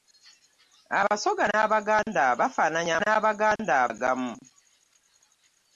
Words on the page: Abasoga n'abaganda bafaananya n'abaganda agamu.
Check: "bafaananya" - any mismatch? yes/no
no